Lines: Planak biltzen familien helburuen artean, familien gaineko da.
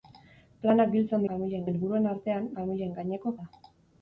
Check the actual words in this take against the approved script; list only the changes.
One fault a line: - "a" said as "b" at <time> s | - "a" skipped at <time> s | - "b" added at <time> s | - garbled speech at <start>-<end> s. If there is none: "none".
none